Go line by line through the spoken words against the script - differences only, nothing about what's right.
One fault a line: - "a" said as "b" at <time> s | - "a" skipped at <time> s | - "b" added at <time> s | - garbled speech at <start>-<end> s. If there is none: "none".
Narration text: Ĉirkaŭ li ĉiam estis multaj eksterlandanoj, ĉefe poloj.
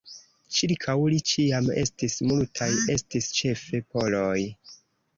- "eksterlandanoj" said as "estis" at 2.9 s